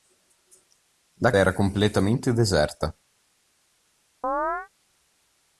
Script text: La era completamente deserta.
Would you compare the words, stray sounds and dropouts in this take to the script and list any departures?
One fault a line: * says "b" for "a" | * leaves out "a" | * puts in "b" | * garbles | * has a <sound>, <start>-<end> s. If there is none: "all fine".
* has a chirp, 4.2-4.7 s